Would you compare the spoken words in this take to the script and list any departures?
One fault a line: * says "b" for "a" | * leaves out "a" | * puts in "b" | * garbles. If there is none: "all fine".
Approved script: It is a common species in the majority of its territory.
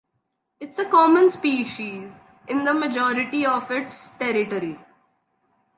all fine